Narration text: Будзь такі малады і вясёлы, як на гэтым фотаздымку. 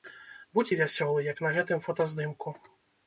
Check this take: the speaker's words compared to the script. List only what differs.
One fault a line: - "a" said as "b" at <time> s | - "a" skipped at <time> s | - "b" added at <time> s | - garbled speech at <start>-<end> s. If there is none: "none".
- "такі малады" skipped at 0.7 s